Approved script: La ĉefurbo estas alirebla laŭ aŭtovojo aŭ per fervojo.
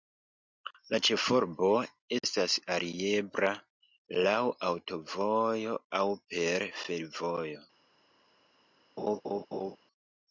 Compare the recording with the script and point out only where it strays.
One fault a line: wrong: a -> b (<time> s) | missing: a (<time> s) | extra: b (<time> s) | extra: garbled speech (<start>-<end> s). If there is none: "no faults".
no faults